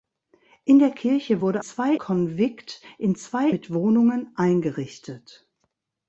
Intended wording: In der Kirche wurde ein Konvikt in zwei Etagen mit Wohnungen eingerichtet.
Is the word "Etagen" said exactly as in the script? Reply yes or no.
no